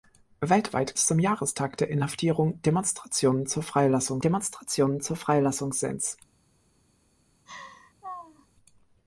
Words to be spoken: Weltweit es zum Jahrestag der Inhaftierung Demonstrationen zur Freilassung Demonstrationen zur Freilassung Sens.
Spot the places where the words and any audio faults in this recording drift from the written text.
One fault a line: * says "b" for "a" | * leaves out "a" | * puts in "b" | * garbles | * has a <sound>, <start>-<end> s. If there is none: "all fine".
* has a laugh, 7.5-8.5 s